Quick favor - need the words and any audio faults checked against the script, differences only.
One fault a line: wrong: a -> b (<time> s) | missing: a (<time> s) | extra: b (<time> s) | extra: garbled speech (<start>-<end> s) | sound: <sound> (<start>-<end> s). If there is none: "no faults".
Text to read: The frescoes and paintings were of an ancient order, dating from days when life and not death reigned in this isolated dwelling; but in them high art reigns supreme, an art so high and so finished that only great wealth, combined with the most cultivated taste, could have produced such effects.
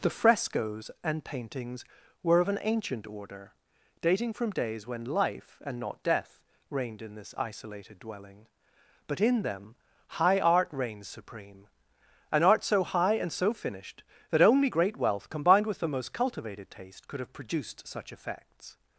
no faults